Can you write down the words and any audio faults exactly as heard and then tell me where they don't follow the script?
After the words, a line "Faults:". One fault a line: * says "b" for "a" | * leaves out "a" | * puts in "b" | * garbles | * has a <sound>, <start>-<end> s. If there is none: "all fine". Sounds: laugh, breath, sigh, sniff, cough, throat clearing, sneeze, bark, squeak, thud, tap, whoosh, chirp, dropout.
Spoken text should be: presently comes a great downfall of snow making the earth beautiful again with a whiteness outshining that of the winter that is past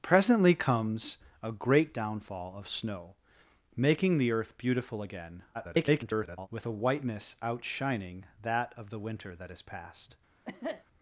presently comes a great downfall of snow making the earth beautiful again [garbled] with a whiteness outshining that of the winter that is past
Faults:
* garbles
* has a cough, 10.4-10.8 s